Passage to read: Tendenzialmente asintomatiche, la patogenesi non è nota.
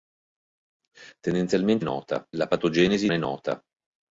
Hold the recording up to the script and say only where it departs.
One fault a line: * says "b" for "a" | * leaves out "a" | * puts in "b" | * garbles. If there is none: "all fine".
* says "nota" for "asintomatiche"
* leaves out "non"